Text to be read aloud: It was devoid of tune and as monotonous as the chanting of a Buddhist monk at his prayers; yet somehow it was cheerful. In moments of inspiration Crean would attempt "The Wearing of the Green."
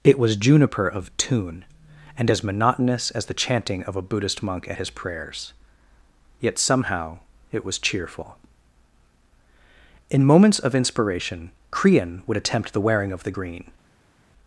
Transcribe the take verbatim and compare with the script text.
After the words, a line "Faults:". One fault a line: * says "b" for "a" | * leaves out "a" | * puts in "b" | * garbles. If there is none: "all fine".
It was juniper of tune and as monotonous as the chanting of a Buddhist monk at his prayers; yet somehow it was cheerful. In moments of inspiration Crean would attempt "The Wearing of the Green."
Faults:
* says "juniper" for "devoid"